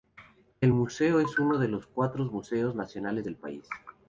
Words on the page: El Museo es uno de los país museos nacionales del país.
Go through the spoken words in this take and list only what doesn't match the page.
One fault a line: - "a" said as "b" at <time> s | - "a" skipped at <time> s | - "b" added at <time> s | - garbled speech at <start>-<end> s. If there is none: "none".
- "país" said as "cuatro" at 1.8 s